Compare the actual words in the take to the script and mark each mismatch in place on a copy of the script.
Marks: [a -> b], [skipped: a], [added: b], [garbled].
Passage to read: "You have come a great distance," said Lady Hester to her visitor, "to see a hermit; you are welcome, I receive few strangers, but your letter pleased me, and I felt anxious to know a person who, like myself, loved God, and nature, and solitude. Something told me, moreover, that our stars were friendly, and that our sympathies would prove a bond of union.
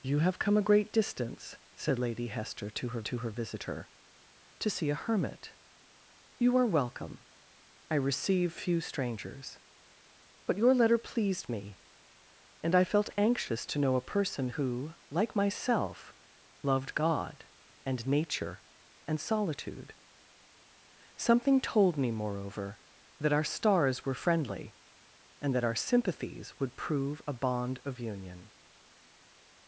"You have come a great distance," said Lady Hester to her [added: to her] visitor, "to see a hermit; you are welcome, I receive few strangers, but your letter pleased me, and I felt anxious to know a person who, like myself, loved God, and nature, and solitude. Something told me, moreover, that our stars were friendly, and that our sympathies would prove a bond of union.